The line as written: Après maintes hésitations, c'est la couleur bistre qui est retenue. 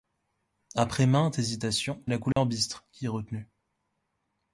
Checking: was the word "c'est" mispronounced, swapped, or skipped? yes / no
yes